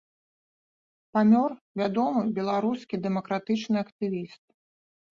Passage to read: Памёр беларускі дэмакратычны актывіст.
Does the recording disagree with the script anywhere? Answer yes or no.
yes